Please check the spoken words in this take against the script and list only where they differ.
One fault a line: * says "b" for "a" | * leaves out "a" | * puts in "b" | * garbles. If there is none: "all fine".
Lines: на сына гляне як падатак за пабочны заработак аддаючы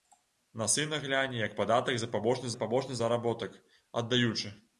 * puts in "за пабочны"